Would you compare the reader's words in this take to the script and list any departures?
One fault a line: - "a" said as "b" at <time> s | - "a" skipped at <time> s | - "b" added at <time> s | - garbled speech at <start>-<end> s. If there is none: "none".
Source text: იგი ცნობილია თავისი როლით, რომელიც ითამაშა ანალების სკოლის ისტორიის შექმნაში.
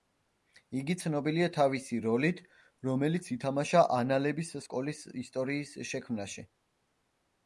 none